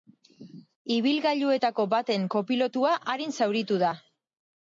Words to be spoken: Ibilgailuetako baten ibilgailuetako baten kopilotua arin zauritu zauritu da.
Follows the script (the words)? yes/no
no